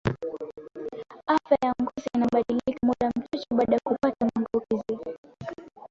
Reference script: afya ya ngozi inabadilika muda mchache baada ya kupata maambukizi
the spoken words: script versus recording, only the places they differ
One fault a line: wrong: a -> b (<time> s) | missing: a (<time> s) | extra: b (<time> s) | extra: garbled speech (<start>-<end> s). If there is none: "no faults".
no faults